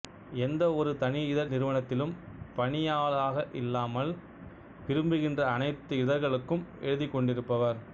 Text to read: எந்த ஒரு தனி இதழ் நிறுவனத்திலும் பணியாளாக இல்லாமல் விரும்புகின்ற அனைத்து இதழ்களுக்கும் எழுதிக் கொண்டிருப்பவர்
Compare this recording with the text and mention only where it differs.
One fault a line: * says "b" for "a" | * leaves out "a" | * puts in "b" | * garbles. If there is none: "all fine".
all fine